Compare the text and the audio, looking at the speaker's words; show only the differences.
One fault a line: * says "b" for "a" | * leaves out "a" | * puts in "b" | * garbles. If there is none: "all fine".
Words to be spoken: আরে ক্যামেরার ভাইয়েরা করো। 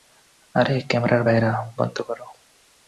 * puts in "বন্ধ"